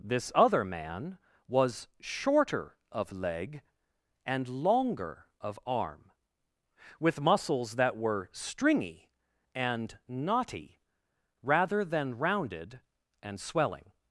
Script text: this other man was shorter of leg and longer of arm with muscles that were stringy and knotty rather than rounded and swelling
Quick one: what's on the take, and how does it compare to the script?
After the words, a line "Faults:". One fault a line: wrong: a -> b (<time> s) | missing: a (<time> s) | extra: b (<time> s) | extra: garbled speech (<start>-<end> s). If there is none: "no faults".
this other man was shorter of leg and longer of arm with muscles that were stringy and knotty rather than rounded and swelling
Faults:
no faults